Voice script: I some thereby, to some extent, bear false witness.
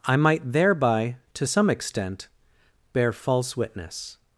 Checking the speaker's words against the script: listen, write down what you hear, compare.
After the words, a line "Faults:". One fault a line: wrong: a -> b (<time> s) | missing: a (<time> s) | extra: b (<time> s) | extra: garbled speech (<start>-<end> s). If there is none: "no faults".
I might thereby, to some extent, bear false witness.
Faults:
wrong: some -> might (0.1 s)